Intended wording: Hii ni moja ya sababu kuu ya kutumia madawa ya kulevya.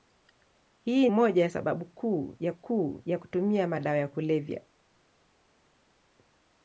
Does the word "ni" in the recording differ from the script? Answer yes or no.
yes